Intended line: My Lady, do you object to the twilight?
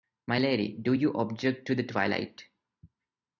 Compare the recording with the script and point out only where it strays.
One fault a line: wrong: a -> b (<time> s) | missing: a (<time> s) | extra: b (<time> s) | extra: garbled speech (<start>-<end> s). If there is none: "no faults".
no faults